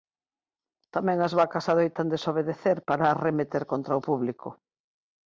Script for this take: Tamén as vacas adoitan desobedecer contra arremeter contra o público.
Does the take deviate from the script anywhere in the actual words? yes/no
yes